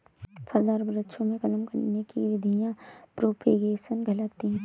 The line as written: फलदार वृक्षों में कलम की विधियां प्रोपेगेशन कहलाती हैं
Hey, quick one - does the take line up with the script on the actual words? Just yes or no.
no